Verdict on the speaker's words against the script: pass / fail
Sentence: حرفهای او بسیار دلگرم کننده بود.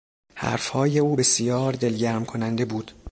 pass